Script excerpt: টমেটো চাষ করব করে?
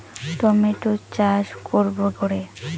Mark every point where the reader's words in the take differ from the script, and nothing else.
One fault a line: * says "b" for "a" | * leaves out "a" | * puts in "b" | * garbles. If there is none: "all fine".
all fine